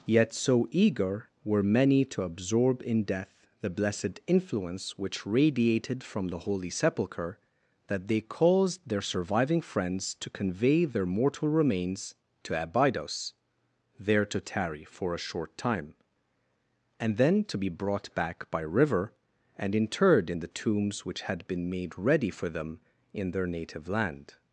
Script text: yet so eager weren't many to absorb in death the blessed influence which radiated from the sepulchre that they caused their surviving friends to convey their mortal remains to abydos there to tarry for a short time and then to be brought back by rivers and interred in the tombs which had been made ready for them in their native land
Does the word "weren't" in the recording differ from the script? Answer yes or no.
yes